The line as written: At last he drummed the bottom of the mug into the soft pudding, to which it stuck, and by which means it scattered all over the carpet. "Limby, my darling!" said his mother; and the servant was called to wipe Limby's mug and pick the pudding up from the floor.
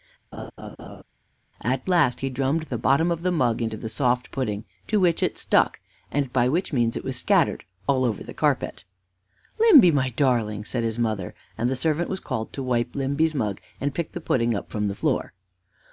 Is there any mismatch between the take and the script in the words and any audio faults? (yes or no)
yes